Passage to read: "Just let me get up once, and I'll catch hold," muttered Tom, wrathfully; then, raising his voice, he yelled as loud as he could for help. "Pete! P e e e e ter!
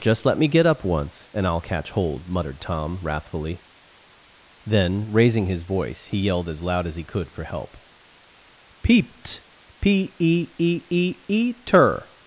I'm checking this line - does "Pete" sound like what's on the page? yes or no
no